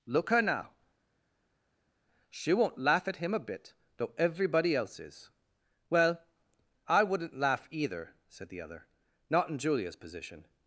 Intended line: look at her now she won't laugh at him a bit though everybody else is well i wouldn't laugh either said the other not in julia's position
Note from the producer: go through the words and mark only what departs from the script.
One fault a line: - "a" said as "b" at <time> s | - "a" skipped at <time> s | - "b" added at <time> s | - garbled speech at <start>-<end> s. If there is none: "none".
- "at" skipped at 0.3 s